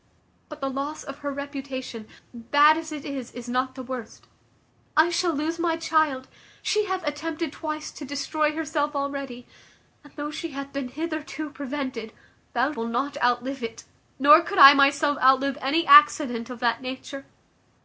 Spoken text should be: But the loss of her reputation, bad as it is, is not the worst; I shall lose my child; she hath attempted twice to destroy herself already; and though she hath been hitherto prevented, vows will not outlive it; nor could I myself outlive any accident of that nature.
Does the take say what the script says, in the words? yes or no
yes